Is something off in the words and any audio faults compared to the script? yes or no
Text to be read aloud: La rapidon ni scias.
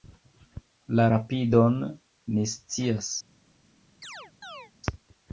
yes